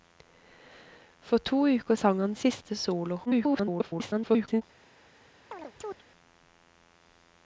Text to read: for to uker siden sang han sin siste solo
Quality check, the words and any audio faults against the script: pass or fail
fail